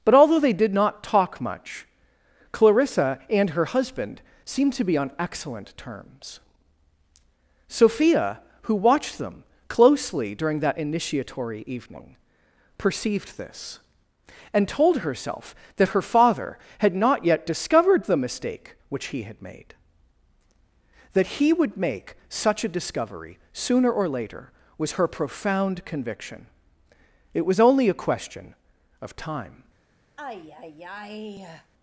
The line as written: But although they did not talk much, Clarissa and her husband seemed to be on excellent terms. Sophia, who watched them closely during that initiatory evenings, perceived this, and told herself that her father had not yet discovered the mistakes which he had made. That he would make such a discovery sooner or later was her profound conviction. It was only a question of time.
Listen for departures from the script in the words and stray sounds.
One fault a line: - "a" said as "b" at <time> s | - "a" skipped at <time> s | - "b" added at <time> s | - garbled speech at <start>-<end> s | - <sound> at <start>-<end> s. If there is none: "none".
- "evenings" said as "evening" at 11.7 s
- "mistakes" said as "mistake" at 18.2 s
- sigh at 30.2-31.7 s